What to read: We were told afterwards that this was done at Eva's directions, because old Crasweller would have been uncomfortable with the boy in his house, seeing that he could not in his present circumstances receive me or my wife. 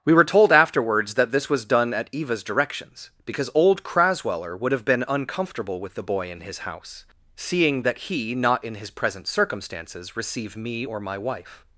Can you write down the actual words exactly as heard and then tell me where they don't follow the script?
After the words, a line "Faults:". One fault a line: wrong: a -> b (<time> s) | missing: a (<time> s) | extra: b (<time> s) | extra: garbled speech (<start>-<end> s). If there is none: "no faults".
We were told afterwards that this was done at Eva's directions, because old Crasweller would have been uncomfortable with the boy in his house, seeing that he not in his present circumstances receive me or my wife.
Faults:
missing: could (8.3 s)